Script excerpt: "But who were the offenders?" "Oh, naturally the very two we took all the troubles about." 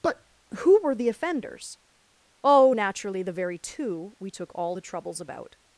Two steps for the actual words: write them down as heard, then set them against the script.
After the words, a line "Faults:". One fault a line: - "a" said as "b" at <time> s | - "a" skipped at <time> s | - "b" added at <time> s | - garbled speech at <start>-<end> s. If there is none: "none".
"But who were the offenders?" "Oh, naturally the very two we took all the troubles about."
Faults:
none